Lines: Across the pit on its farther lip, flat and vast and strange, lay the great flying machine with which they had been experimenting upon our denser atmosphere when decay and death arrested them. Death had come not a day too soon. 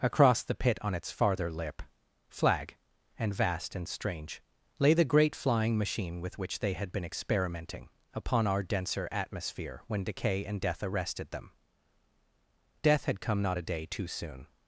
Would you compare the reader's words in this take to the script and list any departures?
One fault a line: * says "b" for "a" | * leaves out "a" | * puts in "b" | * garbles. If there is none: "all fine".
* says "flag" for "flat"